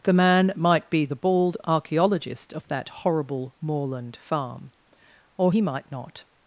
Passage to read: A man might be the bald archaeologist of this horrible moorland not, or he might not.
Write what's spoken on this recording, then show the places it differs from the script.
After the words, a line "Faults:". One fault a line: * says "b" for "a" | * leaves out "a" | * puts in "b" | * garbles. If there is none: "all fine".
The man might be the bald archaeologist of that horrible moorland farm, or he might not.
Faults:
* says "The" for "A"
* says "that" for "this"
* says "farm" for "not"